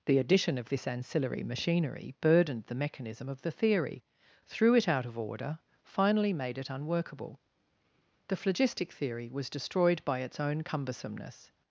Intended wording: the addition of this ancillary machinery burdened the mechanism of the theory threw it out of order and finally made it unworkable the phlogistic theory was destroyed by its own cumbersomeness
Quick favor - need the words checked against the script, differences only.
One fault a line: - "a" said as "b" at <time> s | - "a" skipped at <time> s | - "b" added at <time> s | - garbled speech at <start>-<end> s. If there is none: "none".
- "and" skipped at 5.6 s